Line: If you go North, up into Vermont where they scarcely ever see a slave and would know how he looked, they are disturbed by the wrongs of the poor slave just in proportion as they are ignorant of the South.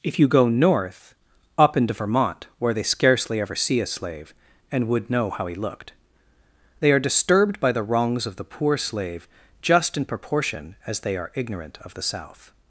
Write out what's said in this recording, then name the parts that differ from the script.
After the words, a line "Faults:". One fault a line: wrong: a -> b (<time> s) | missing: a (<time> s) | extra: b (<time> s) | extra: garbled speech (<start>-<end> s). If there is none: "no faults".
If you go North, up into Vermont where they scarcely ever see a slave and would know how he looked, they are disturbed by the wrongs of the poor slave just in proportion as they are ignorant of the South.
Faults:
no faults